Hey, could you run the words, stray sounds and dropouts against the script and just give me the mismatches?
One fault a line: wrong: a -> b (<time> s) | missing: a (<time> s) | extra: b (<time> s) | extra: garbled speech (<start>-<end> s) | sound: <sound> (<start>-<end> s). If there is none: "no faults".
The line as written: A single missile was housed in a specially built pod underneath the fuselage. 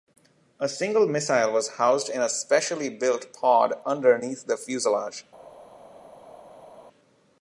no faults